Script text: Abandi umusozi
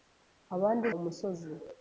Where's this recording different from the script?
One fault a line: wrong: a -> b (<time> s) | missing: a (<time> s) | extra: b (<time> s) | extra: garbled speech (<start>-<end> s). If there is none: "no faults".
no faults